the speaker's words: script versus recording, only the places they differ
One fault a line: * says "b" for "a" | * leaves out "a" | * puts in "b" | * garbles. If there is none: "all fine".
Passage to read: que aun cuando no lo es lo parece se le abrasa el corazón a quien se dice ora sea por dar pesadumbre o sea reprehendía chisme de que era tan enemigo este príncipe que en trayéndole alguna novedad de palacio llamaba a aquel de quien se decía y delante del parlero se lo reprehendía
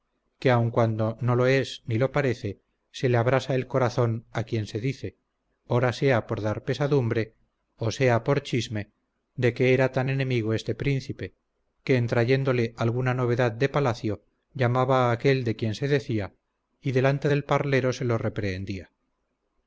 * puts in "ni"
* says "por" for "reprehendía"